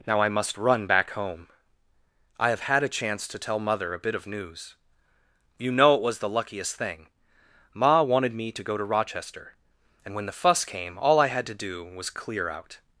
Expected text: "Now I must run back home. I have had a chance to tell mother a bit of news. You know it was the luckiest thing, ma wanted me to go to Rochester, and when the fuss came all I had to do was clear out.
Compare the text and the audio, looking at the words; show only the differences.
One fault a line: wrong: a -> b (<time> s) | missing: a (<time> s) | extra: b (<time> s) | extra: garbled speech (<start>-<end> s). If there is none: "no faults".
no faults